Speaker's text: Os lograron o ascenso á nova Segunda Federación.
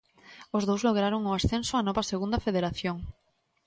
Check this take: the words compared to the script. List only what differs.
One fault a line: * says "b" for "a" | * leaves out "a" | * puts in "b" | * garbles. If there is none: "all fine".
* puts in "dous"